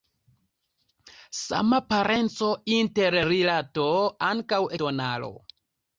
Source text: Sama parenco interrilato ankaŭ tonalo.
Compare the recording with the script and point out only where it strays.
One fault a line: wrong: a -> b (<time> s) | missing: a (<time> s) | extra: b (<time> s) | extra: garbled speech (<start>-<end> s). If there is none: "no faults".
no faults